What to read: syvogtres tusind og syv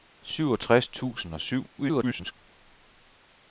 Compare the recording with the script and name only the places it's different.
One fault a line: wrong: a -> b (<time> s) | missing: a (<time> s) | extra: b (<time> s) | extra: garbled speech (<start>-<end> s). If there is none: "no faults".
extra: garbled speech (1.8-2.3 s)